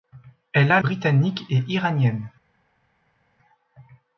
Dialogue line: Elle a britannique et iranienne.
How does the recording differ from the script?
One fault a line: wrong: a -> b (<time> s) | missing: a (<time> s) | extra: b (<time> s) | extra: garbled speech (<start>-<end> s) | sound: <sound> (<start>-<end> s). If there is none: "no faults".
no faults